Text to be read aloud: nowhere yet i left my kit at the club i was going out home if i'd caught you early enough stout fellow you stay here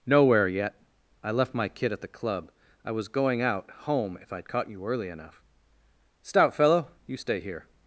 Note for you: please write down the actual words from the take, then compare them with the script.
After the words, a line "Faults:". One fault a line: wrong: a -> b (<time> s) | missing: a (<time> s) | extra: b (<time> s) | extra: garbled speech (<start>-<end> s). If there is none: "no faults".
nowhere yet i left my kit at the club i was going out home if i'd caught you early enough stout fellow you stay here
Faults:
no faults